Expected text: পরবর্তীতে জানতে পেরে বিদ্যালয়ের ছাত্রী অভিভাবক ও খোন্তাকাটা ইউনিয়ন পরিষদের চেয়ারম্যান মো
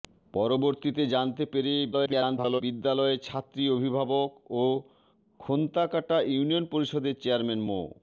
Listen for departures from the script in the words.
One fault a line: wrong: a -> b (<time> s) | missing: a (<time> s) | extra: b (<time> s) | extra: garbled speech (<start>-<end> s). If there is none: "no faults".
extra: garbled speech (1.9-2.6 s)